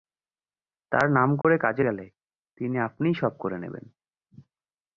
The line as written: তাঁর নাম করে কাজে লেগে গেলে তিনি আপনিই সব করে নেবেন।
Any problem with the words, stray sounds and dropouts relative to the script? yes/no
yes